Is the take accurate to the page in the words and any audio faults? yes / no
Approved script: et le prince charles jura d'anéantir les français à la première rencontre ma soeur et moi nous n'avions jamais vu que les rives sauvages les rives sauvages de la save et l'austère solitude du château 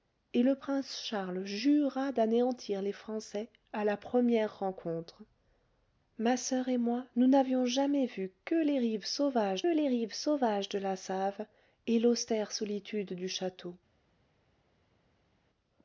yes